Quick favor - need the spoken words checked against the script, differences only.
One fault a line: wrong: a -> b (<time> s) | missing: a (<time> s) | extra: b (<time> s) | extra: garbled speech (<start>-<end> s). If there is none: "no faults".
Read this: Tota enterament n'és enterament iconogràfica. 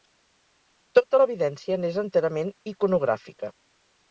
wrong: enterament -> l'evidència (1.2 s)